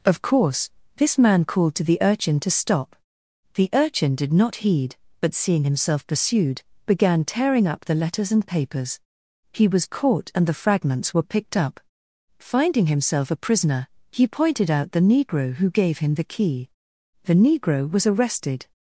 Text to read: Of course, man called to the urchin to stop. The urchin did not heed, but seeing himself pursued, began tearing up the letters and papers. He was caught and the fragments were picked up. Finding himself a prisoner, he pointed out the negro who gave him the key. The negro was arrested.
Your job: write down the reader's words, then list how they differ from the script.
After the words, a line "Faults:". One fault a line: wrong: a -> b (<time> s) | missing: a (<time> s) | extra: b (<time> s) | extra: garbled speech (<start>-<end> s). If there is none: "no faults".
Of course, this man called to the urchin to stop. The urchin did not heed, but seeing himself pursued, began tearing up the letters and papers. He was caught and the fragments were picked up. Finding himself a prisoner, he pointed out the negro who gave him the key. The negro was arrested.
Faults:
extra: this (1.0 s)